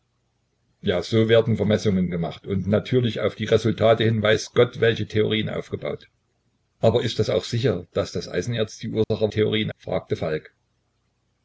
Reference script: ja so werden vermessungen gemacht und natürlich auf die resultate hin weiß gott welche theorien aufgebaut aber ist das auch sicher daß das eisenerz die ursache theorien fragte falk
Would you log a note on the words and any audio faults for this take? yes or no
yes